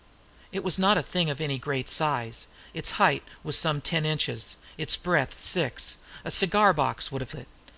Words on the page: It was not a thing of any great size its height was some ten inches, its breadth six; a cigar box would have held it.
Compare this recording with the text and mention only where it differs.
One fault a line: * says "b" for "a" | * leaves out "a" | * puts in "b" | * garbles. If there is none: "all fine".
* leaves out "held"